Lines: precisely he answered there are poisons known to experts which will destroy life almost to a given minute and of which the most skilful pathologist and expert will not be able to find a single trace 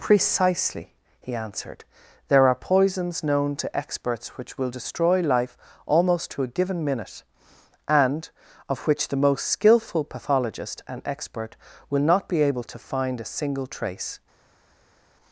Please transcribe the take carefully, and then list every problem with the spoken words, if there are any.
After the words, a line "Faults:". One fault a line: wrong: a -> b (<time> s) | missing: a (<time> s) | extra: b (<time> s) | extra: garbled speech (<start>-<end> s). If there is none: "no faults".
precisely he answered there are poisons known to experts which will destroy life almost to a given minute and of which the most skilful pathologist and expert will not be able to find a single trace
Faults:
no faults